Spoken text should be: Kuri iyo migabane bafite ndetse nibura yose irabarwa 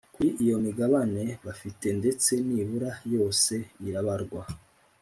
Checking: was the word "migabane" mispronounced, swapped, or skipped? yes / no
no